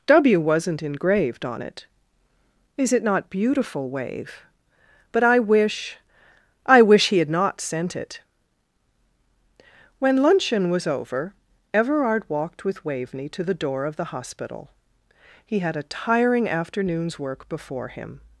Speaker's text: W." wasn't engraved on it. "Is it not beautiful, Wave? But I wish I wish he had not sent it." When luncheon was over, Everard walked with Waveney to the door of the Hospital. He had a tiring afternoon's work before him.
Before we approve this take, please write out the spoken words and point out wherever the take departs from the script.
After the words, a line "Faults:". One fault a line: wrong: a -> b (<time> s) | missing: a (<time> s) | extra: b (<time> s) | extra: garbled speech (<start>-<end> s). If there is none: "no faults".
W." wasn't engraved on it. "Is it not beautiful, Wave? But I wish I wish he had not sent it." When luncheon was over, Everard walked with Waveney to the door of the Hospital. He had a tiring afternoon's work before him.
Faults:
no faults